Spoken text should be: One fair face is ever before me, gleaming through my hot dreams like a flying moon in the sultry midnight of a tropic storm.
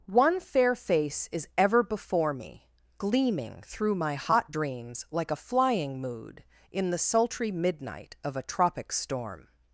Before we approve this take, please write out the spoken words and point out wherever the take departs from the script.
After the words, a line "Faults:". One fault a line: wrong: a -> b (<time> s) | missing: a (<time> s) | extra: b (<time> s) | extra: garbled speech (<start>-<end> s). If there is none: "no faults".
One fair face is ever before me, gleaming through my hot dreams like a flying mood in the sultry midnight of a tropic storm.
Faults:
wrong: moon -> mood (6.0 s)